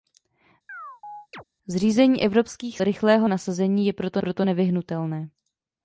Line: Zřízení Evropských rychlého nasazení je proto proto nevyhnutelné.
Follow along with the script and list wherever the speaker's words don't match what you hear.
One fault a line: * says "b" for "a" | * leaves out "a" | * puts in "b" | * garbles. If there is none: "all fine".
all fine